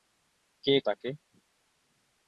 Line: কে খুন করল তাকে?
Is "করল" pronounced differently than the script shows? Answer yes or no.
yes